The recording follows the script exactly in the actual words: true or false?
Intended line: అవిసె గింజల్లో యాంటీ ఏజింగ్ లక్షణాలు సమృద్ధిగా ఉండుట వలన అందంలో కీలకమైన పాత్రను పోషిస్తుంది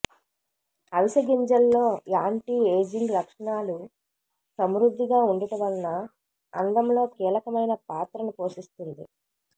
true